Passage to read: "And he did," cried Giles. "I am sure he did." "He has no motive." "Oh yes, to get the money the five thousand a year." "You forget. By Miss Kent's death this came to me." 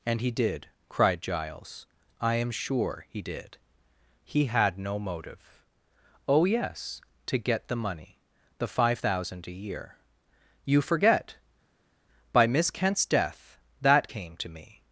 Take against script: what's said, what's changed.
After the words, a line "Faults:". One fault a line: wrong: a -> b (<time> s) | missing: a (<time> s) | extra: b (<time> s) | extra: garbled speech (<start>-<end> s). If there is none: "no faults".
"And he did," cried Giles. "I am sure he did." "He had no motive." "Oh yes, to get the money the five thousand a year." "You forget. By Miss Kent's death that came to me."
Faults:
wrong: has -> had (4.5 s)
wrong: this -> that (13.8 s)